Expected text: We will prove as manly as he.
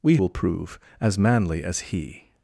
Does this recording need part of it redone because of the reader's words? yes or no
no